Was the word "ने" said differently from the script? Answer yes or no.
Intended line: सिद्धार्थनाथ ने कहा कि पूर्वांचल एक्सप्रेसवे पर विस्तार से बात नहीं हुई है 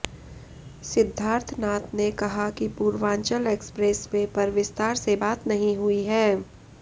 no